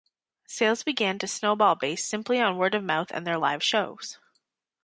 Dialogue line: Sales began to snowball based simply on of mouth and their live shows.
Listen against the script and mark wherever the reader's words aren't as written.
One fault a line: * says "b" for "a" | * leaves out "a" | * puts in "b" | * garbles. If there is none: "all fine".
* puts in "word"